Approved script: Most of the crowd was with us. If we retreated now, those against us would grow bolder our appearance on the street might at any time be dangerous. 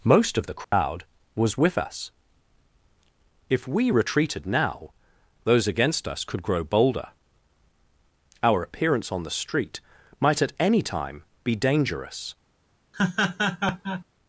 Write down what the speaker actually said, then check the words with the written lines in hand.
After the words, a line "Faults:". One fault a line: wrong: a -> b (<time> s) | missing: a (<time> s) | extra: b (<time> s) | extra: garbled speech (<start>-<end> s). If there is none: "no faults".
Most of the crowd was with us. If we retreated now, those against us could grow bolder our appearance on the street might at any time be dangerous.
Faults:
wrong: would -> could (6.2 s)